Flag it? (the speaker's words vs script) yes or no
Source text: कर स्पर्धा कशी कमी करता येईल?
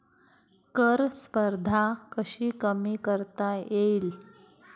no